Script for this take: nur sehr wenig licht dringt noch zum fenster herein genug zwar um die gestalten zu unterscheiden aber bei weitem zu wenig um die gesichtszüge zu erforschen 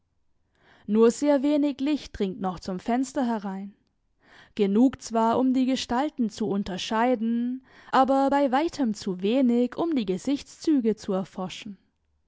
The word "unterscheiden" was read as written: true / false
true